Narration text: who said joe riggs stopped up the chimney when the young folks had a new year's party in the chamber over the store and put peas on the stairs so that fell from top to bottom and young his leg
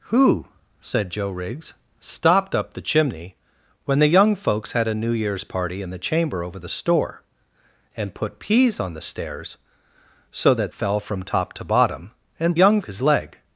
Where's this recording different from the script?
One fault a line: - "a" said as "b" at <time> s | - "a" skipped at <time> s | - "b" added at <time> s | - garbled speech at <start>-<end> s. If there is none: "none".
none